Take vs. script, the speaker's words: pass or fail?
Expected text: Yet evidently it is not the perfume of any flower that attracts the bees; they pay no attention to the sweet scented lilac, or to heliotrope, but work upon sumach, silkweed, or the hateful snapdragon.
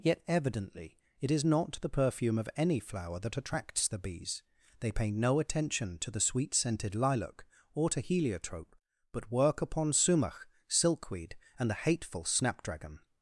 fail